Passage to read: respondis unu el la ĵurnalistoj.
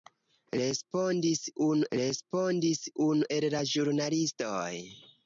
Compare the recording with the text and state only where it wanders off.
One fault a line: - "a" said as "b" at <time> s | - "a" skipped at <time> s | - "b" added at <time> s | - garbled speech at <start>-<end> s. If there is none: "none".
- "respondis unu" added at 2.0 s